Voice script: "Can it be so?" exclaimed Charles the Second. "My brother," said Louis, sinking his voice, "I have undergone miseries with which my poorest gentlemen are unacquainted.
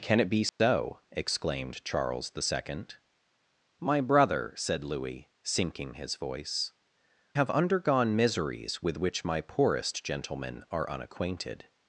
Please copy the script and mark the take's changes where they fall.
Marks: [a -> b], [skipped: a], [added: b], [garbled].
"Can it be so?" exclaimed Charles the Second. "My brother," said Louis, sinking his voice, [skipped: "I] have undergone miseries with which my poorest gentlemen are unacquainted.